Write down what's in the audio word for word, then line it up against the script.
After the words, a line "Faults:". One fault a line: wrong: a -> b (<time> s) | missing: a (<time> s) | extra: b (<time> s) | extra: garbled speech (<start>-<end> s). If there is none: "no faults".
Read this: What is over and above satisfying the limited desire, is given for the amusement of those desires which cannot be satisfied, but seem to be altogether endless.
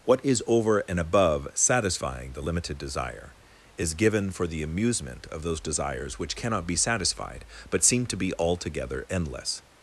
What is over and above satisfying the limited desire, is given for the amusement of those desires which cannot be satisfied, but seem to be altogether endless.
Faults:
no faults